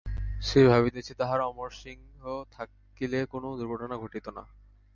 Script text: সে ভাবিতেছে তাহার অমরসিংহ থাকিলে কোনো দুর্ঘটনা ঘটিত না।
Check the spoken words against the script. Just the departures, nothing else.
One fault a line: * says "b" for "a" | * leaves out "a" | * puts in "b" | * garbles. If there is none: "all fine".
all fine